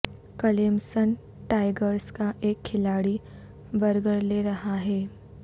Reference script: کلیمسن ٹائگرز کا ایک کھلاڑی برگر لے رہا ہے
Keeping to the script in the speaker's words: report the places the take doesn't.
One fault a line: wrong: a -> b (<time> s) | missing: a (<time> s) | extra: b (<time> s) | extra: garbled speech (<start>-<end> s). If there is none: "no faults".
no faults